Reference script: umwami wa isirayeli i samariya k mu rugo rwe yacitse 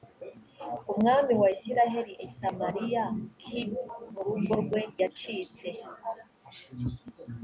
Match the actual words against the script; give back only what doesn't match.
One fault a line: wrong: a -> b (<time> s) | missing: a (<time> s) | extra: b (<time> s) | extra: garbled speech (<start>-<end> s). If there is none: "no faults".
no faults